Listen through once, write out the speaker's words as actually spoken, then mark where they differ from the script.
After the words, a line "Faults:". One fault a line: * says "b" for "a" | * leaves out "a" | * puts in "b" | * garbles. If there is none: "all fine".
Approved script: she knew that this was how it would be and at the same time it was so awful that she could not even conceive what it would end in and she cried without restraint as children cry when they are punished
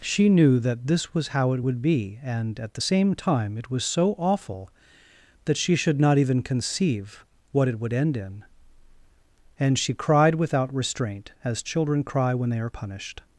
she knew that this was how it would be and at the same time it was so awful that she should not even conceive what it would end in and she cried without restraint as children cry when they are punished
Faults:
* says "should" for "could"